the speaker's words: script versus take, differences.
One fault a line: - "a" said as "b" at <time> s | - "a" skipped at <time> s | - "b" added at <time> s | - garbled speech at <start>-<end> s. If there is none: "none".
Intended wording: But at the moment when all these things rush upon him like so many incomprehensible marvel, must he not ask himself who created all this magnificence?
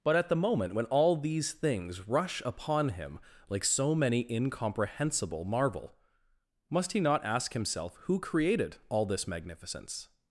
none